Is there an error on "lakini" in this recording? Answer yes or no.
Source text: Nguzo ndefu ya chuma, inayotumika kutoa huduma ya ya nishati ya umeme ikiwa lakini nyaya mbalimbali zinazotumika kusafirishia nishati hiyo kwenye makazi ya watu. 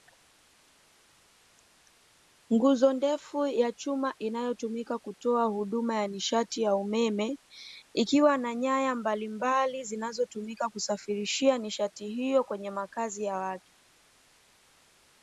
yes